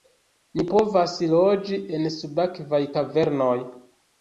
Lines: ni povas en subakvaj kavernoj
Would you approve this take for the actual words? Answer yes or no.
no